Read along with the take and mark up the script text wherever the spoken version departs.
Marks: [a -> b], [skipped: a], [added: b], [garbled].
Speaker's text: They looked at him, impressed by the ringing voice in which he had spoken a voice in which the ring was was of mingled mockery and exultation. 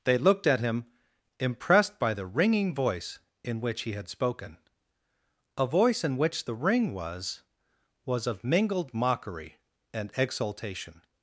They looked at him, impressed by the ringing voice in which he had spoken a voice in which the ring was was of mingled mockery and exultation.